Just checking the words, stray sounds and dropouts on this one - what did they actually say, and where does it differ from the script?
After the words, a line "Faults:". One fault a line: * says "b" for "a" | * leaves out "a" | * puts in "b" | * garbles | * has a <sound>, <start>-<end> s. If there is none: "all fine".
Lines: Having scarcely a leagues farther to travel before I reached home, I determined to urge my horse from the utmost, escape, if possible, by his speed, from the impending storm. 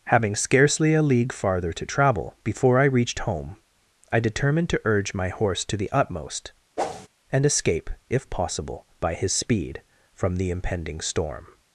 Having scarcely a league farther to travel before I reached home, I determined to urge my horse to the utmost, and escape, if possible, by his speed, from the impending storm.
Faults:
* says "league" for "leagues"
* says "to" for "from"
* has a whoosh, 6.8-7.1 s
* puts in "and"